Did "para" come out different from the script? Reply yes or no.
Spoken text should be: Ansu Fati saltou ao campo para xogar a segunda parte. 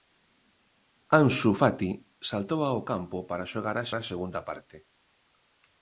no